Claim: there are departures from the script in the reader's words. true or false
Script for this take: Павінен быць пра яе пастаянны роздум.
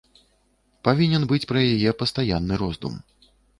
false